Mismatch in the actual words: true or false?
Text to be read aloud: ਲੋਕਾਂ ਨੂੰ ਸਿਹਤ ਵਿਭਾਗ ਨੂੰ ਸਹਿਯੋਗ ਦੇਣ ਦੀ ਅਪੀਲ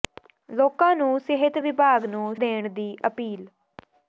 true